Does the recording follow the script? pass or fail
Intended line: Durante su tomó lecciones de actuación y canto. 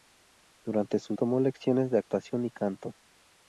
pass